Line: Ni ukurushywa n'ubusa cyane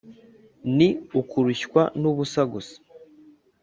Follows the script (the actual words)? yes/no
no